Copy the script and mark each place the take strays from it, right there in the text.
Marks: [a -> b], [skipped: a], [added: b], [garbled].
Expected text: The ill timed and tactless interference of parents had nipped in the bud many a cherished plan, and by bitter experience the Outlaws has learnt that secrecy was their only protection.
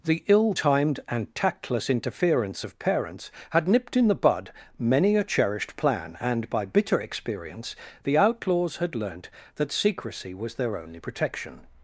The ill timed and tactless interference of parents had nipped in the bud many a cherished plan, and by bitter experience the Outlaws [has -> had] learnt that secrecy was their only protection.